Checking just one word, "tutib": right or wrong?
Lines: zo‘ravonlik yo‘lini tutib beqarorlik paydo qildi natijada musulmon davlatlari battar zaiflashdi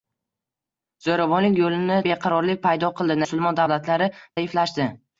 wrong